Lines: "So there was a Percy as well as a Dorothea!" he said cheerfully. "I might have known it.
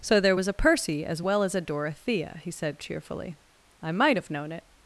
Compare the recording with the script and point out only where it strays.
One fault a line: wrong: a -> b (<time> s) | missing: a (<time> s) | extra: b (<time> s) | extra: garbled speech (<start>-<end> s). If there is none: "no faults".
no faults